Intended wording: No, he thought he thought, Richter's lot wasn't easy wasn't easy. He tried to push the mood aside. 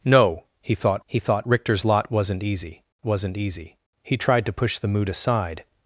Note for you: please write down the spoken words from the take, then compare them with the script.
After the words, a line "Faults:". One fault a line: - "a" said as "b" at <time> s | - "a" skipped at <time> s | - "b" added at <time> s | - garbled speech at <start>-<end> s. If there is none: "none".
No, he thought he thought, Richter's lot wasn't easy wasn't easy. He tried to push the mood aside.
Faults:
none